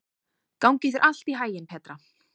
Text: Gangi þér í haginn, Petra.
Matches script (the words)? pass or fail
fail